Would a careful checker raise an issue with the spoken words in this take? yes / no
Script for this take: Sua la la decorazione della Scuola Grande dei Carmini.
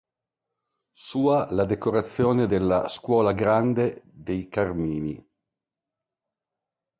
yes